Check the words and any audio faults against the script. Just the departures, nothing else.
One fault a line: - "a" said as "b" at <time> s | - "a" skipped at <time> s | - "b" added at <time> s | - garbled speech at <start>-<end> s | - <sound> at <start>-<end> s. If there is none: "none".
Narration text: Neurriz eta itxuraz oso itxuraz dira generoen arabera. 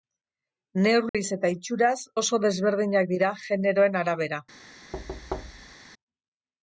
- dropout at 1.1-1.1 s
- "itxuraz" said as "desberdinak" at 2.5 s
- thud at 4.9-5.8 s